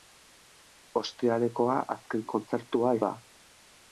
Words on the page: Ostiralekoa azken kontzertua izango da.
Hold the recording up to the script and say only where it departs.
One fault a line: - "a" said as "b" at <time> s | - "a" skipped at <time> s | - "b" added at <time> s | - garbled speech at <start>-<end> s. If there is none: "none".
- "izango" skipped at 3.0 s